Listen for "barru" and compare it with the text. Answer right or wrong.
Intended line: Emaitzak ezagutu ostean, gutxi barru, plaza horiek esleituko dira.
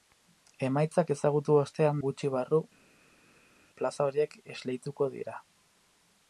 right